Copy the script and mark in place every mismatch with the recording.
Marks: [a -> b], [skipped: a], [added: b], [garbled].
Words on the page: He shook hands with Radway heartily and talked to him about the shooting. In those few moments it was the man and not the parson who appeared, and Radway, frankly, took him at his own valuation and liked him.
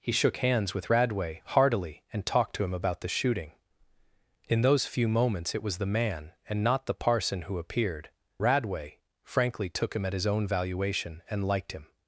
He shook hands with Radway heartily and talked to him about the shooting. In those few moments it was the man and not the parson who appeared, [skipped: and] Radway, frankly, took him at his own valuation and liked him.